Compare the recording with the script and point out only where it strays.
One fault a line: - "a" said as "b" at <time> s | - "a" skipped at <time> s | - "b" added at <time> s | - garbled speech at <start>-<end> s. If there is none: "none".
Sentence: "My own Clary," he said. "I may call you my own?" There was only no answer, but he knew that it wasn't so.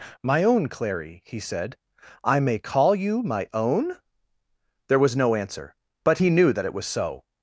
- "only" skipped at 5.2 s
- "wasn't" said as "was" at 6.7 s